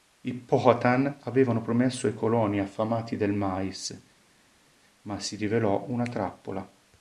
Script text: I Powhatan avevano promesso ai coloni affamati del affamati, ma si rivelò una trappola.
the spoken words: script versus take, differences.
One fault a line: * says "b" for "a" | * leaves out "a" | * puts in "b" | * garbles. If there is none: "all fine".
* says "mais" for "affamati"